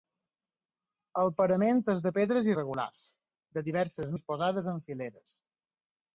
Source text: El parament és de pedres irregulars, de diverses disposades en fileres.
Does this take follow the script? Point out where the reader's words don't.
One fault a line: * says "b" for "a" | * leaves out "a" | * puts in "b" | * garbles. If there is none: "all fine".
all fine